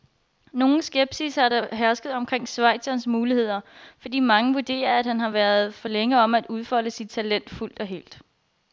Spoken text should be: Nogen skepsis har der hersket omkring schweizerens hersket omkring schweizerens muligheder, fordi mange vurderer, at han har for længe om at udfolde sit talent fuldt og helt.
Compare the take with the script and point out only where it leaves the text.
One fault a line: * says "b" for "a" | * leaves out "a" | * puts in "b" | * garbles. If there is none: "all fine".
* leaves out "hersket omkring schweizerens"
* puts in "været"